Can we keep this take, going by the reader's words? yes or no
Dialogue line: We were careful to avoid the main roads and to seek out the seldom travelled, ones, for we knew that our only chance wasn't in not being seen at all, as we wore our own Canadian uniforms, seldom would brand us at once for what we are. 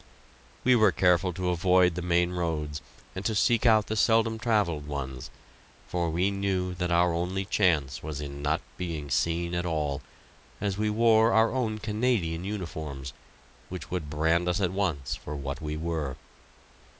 no